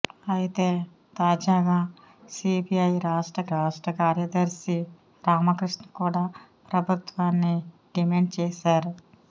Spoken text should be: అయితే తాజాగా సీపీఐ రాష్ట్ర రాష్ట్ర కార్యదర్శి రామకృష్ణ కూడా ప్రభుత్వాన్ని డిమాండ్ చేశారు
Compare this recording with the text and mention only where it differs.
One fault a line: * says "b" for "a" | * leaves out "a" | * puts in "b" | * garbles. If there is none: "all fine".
all fine